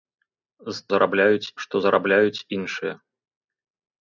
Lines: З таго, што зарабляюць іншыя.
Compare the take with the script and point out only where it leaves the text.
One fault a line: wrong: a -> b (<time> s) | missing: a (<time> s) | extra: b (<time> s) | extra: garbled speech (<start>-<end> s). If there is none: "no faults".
wrong: таго -> зарабляюць (0.9 s)